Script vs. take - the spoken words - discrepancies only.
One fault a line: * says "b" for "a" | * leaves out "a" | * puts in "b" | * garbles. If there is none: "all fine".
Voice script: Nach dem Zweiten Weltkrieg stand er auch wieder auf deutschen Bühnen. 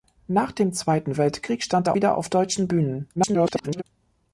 * leaves out "auch"
* garbles